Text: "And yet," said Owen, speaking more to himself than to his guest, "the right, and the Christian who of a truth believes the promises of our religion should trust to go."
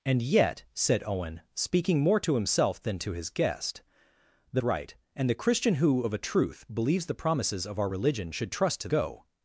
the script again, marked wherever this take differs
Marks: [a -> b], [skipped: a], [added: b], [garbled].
"And yet," said Owen, speaking more to himself than to his guest, "the right, and the Christian who of a truth believes the promises of our religion should trust to go."